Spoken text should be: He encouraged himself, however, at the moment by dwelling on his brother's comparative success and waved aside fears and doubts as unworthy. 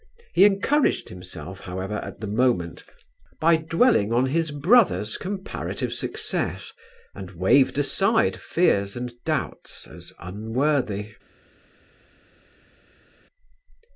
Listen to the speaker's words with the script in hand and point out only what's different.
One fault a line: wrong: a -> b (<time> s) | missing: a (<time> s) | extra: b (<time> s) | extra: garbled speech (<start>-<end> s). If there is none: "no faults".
no faults